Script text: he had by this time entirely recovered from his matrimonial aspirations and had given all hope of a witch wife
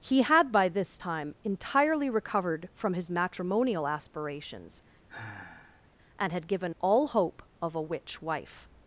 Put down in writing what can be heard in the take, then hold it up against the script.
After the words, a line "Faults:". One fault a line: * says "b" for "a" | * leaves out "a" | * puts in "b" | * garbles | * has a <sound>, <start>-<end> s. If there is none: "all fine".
he had by this time entirely recovered from his matrimonial aspirations and had given all hope of a witch wife
Faults:
* has a sigh, 5.1-5.9 s